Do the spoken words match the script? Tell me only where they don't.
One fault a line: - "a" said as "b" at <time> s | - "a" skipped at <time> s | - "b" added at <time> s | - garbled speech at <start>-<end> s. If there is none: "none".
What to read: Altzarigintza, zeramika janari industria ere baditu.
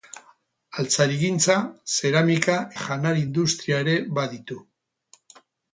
none